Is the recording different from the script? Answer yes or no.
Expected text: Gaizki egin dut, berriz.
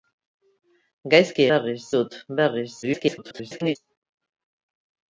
yes